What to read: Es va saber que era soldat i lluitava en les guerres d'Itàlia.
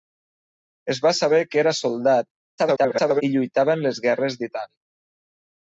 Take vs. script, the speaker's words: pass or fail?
fail